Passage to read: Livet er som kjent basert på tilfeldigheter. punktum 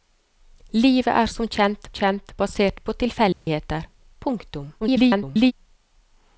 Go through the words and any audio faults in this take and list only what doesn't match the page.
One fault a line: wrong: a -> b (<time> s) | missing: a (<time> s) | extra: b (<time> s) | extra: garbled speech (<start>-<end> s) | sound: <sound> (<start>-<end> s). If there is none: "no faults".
extra: kjent (2.0 s)
sound: dropout (3.3-3.5 s)
extra: garbled speech (4.8-5.5 s)